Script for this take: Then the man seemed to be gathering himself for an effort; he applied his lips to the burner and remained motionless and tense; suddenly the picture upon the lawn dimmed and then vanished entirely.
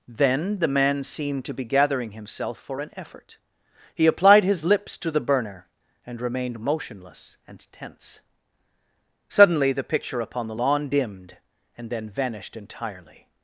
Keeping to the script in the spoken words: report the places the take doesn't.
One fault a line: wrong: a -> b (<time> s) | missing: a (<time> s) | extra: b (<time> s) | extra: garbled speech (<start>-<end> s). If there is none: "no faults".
no faults